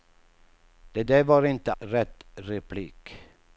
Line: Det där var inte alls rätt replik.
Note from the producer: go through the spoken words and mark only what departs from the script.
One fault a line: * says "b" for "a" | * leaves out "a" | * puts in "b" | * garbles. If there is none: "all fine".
* leaves out "alls"